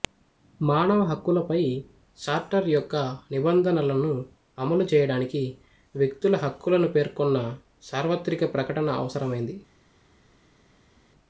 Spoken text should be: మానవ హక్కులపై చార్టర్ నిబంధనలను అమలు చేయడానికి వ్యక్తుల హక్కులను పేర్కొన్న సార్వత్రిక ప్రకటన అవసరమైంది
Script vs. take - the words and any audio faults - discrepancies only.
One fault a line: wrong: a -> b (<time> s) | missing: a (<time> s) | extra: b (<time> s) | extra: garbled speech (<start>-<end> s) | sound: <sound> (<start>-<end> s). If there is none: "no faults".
extra: యొక్క (2.7 s)